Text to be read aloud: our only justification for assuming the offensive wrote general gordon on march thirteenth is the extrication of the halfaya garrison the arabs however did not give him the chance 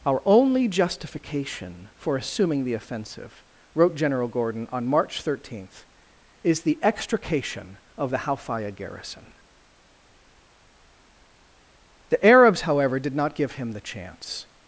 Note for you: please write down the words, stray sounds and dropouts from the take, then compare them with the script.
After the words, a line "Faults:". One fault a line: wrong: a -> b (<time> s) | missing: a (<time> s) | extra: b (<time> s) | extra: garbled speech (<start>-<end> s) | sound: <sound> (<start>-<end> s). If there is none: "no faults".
our only justification for assuming the offensive wrote general gordon on march thirteenth is the extrication of the halfaya garrison the arabs however did not give him the chance
Faults:
no faults